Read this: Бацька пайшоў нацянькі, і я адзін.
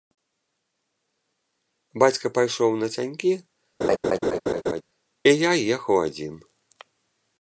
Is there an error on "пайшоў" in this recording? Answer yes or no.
no